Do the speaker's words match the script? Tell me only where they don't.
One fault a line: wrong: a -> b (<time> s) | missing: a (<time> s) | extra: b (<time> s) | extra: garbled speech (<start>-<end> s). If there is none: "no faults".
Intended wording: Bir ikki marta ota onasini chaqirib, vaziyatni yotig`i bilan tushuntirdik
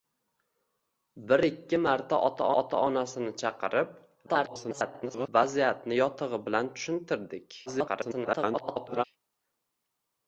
extra: ota (2.6 s)
extra: garbled speech (4.3-5.3 s)
extra: garbled speech (7.7-9.0 s)